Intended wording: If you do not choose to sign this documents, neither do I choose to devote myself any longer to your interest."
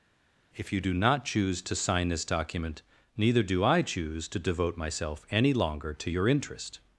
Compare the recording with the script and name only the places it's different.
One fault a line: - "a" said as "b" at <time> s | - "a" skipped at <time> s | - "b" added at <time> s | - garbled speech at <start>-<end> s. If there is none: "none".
- "documents" said as "document" at 2.2 s